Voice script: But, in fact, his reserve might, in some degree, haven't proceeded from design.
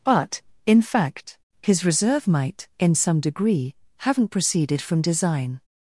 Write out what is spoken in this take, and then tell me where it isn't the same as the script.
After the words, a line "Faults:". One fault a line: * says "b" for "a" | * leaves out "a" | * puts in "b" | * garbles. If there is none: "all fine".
But, in fact, his reserve might, in some degree, haven't proceeded from design.
Faults:
all fine